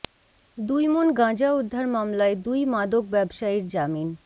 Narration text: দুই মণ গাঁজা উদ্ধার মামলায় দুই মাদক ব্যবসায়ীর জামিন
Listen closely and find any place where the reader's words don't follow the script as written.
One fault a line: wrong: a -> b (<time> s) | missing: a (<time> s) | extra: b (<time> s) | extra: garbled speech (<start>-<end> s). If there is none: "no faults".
no faults